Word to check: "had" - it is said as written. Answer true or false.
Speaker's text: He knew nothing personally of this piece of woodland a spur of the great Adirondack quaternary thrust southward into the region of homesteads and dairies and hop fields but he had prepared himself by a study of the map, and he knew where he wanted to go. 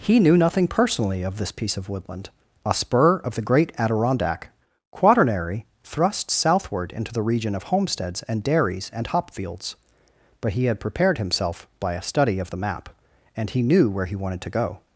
true